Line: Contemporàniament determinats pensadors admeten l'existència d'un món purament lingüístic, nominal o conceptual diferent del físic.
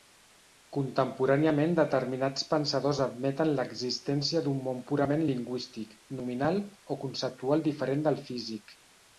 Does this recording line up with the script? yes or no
yes